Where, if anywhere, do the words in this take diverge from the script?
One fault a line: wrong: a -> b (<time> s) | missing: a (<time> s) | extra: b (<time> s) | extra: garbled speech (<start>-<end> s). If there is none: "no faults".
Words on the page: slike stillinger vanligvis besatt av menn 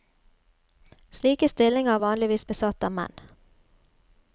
no faults